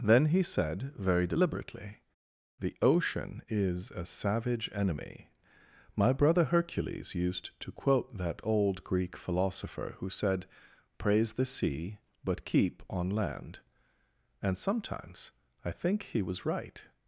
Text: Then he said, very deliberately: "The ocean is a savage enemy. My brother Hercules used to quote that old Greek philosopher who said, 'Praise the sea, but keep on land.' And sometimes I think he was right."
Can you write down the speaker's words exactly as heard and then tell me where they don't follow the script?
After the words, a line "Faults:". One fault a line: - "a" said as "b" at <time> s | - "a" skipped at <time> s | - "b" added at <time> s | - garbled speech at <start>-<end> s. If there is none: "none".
Then he said, very deliberately: "The ocean is a savage enemy. My brother Hercules used to quote that old Greek philosopher who said, 'Praise the sea, but keep on land.' And sometimes I think he was right."
Faults:
none